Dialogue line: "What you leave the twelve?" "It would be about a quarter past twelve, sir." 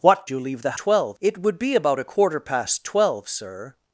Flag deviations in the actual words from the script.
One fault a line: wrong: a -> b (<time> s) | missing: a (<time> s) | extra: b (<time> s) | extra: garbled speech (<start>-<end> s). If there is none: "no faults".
no faults